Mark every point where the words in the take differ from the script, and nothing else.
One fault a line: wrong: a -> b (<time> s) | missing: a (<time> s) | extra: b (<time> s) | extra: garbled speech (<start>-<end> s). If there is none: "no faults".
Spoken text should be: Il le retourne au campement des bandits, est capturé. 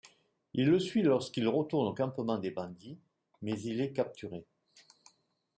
extra: suit lorsqu'il (0.8 s)
extra: mais il (3.4 s)